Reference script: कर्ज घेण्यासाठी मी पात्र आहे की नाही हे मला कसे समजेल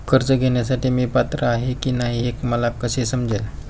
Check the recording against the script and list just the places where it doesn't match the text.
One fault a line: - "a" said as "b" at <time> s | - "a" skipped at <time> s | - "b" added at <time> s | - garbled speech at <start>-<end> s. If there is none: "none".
none